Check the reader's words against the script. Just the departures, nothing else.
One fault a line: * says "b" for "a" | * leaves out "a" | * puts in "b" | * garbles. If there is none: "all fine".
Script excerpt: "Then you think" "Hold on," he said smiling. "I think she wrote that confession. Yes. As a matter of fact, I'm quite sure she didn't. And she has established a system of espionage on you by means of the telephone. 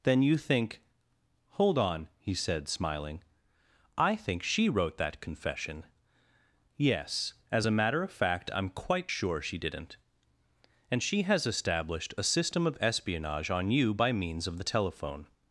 all fine